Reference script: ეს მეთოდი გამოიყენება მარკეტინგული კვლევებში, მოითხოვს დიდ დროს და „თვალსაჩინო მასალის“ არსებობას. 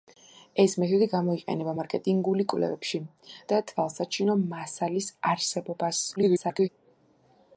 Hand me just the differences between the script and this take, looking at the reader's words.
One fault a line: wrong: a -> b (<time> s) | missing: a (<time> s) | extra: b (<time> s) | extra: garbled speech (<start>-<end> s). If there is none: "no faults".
missing: მოითხოვს დიდ დროს (3.0 s)
extra: garbled speech (6.2-6.7 s)